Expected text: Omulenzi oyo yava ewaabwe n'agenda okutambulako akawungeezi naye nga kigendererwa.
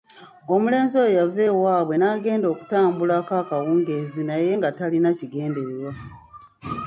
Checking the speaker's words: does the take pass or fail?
fail